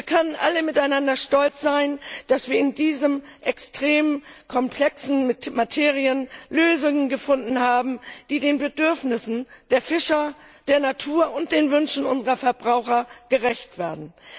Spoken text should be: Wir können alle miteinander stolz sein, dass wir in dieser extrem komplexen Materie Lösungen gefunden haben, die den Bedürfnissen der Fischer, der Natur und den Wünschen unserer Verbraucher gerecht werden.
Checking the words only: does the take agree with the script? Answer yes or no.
yes